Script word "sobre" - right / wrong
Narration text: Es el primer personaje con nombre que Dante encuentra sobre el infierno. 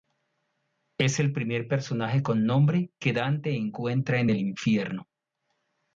wrong